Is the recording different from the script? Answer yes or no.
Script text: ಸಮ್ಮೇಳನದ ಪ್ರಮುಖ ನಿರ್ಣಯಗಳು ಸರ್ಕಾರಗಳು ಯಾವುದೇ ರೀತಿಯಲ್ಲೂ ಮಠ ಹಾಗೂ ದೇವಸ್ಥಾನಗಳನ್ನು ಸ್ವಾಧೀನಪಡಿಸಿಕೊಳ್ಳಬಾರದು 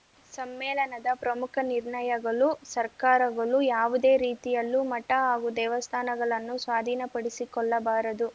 no